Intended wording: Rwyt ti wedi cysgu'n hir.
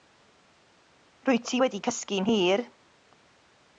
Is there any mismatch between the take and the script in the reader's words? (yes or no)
no